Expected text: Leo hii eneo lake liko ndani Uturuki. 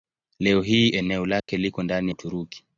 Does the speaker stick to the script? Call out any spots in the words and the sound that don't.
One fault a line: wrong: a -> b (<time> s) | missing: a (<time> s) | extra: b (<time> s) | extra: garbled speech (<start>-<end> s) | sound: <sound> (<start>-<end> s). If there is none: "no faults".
sound: dropout (1.4-1.5 s)